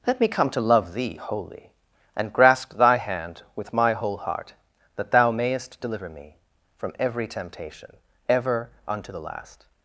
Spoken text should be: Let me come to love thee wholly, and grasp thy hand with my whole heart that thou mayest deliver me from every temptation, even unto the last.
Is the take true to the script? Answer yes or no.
no